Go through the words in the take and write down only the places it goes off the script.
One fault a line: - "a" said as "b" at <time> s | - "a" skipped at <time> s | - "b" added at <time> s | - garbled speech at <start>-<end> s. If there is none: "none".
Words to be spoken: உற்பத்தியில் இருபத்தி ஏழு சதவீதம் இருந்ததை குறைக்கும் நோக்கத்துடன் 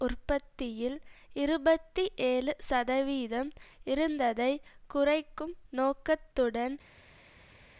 none